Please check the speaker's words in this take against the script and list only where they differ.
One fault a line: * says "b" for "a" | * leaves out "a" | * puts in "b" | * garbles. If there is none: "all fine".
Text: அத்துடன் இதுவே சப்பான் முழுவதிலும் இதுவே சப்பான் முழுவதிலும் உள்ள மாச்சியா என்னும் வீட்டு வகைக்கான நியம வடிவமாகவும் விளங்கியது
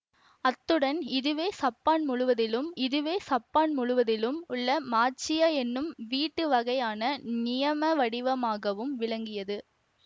all fine